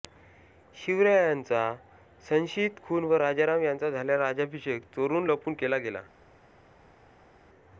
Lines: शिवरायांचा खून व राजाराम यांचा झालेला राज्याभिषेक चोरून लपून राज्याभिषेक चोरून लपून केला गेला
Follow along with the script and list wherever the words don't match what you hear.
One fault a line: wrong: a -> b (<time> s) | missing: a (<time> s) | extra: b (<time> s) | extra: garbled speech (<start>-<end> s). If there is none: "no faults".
extra: संशियित (2.2 s)
missing: राज्याभिषेक चोरून लपून (5.5 s)